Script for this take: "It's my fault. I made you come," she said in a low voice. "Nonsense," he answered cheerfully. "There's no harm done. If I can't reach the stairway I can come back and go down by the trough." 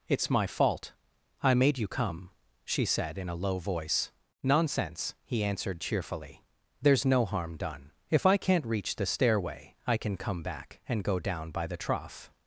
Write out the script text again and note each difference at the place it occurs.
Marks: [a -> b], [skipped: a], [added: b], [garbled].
"It's my fault. I made you come," she said in a low voice. "Nonsense," he answered cheerfully. "There's no harm done. If I can't reach the stairway I can come back and go down by the trough."